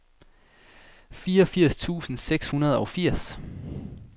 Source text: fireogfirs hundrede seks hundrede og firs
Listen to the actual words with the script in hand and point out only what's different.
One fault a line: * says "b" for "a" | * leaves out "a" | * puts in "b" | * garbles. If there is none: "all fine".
* says "tusind" for "hundrede"